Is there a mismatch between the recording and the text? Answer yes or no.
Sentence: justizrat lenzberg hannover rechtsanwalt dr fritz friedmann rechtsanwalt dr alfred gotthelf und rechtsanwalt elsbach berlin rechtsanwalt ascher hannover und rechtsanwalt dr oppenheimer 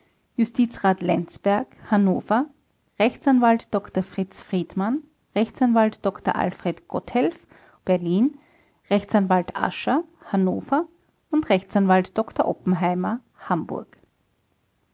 yes